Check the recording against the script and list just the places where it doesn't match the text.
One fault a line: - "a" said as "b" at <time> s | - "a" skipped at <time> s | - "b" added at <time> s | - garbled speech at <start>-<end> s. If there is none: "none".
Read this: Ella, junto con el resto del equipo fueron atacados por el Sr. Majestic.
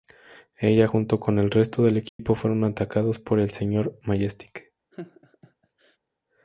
none